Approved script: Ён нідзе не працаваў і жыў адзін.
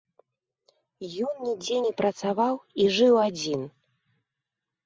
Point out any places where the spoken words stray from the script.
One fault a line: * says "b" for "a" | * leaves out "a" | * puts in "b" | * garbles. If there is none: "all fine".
all fine